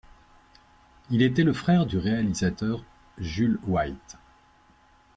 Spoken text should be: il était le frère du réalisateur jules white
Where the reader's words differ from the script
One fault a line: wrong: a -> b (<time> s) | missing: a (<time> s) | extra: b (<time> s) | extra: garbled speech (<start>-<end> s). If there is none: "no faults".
no faults